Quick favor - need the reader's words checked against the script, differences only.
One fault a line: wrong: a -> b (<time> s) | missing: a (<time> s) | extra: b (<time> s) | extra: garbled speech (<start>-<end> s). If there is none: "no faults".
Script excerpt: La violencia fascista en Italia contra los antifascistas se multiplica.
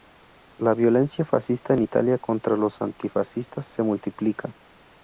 no faults